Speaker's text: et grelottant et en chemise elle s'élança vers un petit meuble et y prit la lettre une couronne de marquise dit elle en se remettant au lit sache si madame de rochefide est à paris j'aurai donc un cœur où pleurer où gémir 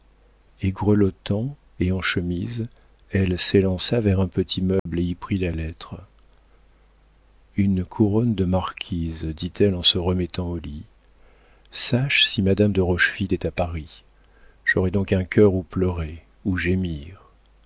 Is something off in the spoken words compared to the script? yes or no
no